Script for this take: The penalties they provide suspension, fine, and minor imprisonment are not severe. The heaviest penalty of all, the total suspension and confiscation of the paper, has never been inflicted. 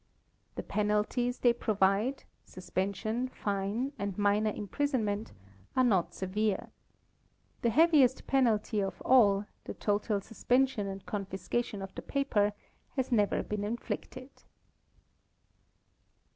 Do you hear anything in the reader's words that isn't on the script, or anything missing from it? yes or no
no